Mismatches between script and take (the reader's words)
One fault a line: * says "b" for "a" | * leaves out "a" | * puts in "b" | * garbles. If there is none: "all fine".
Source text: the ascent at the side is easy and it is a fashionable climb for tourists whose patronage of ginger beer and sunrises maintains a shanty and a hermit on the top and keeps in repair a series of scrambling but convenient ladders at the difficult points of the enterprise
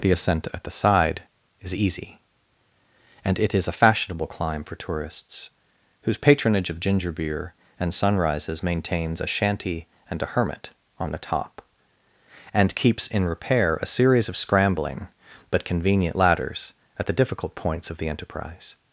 all fine